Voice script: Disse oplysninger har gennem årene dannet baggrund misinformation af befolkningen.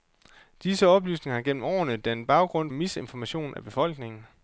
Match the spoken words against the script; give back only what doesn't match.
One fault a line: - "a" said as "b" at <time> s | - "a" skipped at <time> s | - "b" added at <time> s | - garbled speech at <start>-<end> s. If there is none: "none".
none